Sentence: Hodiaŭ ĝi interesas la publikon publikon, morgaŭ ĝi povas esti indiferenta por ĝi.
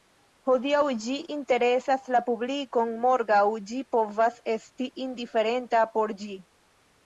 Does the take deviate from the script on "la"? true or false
false